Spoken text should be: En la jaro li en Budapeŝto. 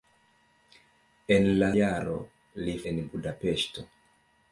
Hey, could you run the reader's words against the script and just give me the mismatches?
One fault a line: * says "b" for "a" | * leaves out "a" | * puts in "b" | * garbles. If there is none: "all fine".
all fine